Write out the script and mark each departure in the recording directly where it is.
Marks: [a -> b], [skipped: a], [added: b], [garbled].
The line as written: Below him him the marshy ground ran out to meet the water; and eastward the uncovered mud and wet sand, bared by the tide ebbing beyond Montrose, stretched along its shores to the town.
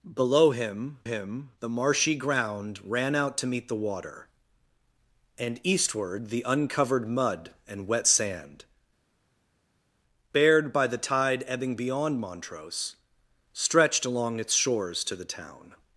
Below him him the marshy ground ran out to meet the water; and eastward the uncovered mud and wet sand, bared by the tide ebbing beyond Montrose, stretched along its shores to the town.